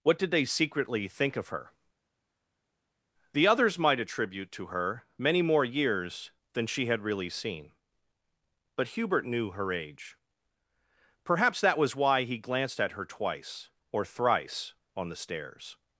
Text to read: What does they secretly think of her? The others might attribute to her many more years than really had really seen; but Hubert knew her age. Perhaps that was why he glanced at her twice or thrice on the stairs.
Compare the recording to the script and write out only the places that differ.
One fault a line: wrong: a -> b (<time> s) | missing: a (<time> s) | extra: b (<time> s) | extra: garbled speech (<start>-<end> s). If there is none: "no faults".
wrong: does -> did (0.2 s)
wrong: really -> she (6.7 s)